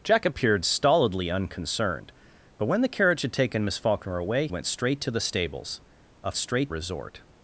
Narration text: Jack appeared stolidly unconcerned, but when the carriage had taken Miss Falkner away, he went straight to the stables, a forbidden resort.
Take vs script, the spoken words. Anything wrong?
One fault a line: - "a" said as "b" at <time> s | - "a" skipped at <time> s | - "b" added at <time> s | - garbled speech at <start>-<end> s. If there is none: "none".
- "he" skipped at 4.5 s
- "forbidden" said as "straight" at 6.4 s